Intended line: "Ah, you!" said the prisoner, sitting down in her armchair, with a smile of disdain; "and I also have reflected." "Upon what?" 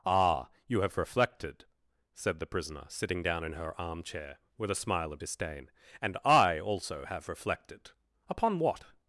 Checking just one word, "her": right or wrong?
right